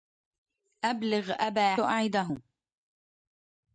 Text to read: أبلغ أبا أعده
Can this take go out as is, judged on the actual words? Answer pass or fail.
pass